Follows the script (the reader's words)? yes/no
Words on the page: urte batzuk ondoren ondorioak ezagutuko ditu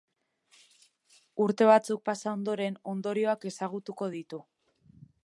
no